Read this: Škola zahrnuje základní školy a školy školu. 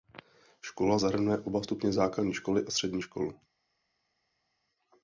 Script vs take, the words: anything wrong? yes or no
yes